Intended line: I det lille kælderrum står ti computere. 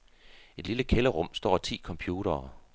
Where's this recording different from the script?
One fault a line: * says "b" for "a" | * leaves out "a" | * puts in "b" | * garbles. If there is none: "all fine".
all fine